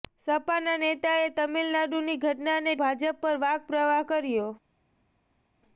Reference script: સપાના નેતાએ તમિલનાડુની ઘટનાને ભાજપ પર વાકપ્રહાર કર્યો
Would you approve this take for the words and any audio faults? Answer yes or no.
yes